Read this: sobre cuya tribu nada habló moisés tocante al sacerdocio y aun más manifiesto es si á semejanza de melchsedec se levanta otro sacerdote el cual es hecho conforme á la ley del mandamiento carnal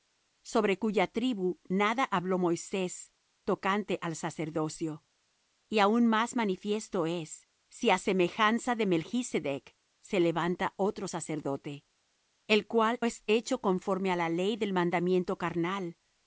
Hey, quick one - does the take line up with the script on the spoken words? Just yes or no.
yes